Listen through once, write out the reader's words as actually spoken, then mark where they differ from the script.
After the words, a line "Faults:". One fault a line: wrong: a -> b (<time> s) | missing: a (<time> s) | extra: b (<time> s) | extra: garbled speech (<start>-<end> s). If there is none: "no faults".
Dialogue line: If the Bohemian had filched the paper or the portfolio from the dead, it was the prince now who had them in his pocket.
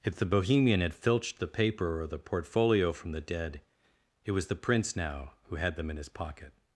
If the Bohemian had filched the paper or the portfolio from the dead, it was the prince now who had them in his pocket.
Faults:
no faults